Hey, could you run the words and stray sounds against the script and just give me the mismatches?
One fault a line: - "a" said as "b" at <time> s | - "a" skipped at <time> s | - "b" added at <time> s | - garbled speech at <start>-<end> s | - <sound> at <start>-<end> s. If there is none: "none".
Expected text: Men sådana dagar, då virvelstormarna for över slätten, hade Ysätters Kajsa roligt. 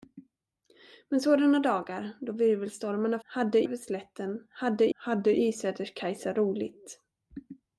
- "for" said as "hade" at 3.2 s
- "hade" added at 4.9 s